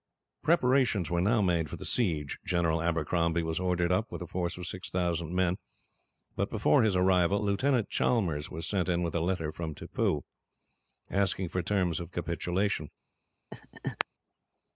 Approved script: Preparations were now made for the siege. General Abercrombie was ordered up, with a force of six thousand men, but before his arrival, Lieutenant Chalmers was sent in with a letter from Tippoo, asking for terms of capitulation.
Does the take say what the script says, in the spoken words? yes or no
yes